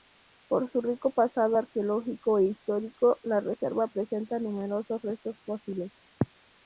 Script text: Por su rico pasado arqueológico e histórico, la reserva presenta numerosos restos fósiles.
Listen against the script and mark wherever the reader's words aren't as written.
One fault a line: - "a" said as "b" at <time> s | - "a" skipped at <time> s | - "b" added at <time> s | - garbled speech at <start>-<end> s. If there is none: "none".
none